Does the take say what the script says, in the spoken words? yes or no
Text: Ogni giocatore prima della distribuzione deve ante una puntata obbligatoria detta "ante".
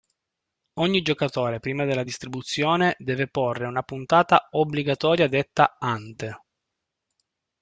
no